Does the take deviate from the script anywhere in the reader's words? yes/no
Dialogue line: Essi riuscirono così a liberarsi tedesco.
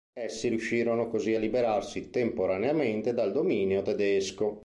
yes